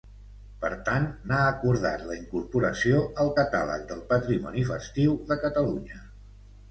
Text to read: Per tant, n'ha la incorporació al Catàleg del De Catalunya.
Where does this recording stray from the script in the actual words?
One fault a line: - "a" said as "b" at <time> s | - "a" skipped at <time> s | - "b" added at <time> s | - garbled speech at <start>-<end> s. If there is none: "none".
- "acordat" added at 1.5 s
- "Patrimoni Festiu" added at 4.1 s